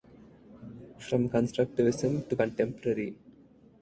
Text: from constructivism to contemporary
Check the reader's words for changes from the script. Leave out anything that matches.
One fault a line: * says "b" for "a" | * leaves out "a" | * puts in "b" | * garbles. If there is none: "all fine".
all fine